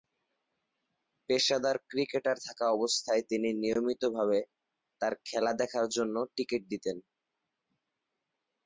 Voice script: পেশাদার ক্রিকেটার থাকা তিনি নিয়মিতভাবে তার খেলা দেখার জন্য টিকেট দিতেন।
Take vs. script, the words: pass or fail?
fail